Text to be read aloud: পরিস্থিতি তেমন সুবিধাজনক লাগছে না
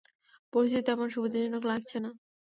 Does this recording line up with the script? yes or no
yes